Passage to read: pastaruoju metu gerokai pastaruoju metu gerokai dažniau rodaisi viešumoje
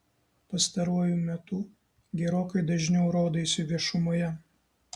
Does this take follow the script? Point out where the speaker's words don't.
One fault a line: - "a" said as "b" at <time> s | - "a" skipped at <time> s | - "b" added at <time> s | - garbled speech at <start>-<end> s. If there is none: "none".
- "pastaruoju metu gerokai" skipped at 2.6 s